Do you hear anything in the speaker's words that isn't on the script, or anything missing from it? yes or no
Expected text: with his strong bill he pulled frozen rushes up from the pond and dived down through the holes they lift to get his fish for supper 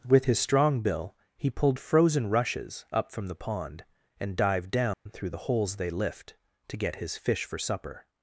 no